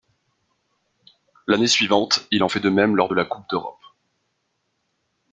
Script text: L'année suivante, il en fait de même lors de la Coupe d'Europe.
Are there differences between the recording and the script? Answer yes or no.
no